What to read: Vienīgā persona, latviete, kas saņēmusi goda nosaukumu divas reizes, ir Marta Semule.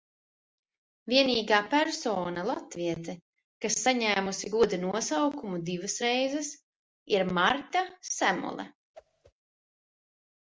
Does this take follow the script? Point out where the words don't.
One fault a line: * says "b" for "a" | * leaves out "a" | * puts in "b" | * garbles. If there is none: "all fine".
all fine